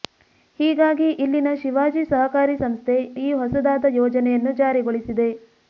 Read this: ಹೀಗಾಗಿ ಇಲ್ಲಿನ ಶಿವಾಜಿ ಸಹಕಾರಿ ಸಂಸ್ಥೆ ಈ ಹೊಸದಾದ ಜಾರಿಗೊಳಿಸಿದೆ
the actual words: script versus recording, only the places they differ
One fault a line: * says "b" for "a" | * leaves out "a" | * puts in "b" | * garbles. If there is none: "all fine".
* puts in "ಯೋಜನೆಯನ್ನು"